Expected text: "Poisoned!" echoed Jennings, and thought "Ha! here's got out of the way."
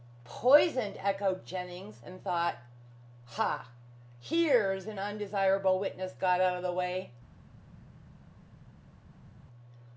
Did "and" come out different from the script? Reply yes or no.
no